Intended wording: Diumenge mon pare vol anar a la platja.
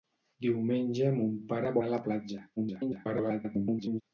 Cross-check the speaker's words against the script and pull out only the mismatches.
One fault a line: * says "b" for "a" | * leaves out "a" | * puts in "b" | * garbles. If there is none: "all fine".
* leaves out "vol"
* garbles